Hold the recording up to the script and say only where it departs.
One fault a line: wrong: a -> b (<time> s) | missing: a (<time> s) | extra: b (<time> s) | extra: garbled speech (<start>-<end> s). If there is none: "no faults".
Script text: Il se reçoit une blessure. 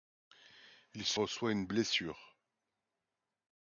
no faults